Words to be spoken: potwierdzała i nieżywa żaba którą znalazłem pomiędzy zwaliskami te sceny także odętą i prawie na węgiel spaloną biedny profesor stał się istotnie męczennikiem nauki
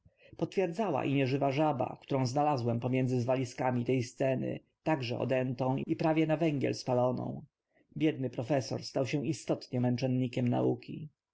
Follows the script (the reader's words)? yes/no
yes